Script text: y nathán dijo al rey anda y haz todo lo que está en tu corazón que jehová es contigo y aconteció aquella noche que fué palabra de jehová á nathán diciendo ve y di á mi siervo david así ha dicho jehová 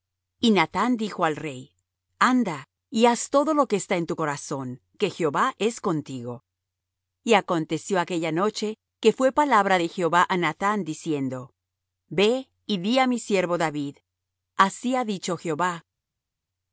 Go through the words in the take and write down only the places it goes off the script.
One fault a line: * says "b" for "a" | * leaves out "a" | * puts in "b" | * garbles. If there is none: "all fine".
all fine